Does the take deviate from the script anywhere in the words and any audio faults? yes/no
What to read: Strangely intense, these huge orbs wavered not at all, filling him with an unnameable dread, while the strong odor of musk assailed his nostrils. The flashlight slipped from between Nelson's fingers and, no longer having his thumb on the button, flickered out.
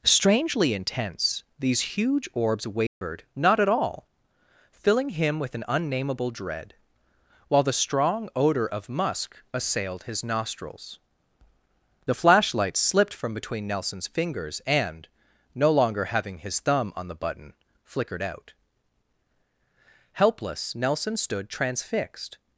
yes